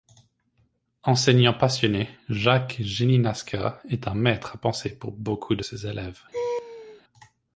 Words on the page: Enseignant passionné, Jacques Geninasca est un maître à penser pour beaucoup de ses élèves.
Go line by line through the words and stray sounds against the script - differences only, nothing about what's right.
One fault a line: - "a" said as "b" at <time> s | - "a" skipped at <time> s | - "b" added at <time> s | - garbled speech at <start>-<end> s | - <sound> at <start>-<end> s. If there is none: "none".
- laugh at 6.3-7.0 s